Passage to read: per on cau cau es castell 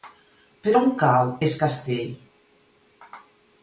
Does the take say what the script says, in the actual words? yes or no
no